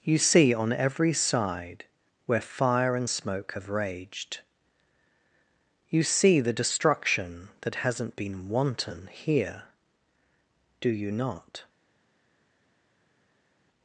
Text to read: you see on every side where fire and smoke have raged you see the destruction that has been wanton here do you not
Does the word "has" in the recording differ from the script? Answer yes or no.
yes